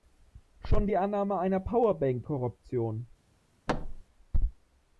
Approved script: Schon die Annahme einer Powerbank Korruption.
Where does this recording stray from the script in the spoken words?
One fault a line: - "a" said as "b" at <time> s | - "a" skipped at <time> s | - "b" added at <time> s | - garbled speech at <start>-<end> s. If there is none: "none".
none